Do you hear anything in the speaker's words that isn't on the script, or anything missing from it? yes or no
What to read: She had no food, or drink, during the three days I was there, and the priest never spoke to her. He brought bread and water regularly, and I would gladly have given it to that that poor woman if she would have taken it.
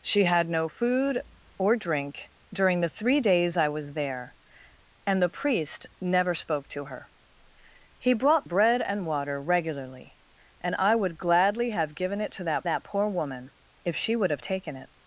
no